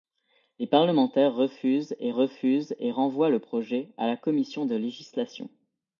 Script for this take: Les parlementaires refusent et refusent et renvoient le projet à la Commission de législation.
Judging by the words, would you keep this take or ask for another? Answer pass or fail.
pass